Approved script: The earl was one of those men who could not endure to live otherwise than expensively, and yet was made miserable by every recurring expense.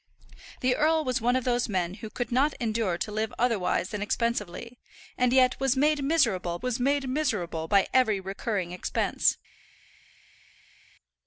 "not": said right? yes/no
yes